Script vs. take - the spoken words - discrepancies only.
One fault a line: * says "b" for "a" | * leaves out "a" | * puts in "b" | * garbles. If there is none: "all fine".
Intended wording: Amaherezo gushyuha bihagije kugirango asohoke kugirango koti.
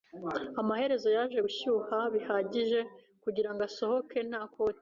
* puts in "yaje"
* says "nta" for "kugirango"